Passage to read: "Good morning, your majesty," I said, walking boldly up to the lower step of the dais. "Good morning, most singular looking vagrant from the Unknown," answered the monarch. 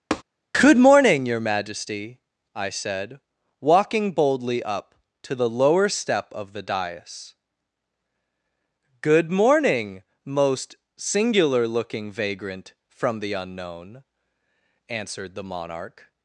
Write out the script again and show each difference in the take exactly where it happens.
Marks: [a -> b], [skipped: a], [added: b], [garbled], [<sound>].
[tap] "Good morning, your majesty," I said, walking boldly up to the lower step of the dais. "Good morning, most singular looking vagrant from the Unknown," answered the monarch.